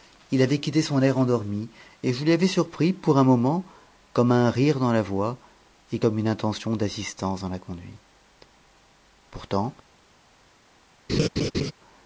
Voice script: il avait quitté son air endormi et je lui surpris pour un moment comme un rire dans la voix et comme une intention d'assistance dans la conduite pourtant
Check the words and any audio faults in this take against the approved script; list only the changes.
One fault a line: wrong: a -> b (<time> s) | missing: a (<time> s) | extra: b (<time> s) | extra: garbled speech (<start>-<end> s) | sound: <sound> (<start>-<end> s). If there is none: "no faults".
extra: avais (2.3 s)
sound: laugh (11.1-11.7 s)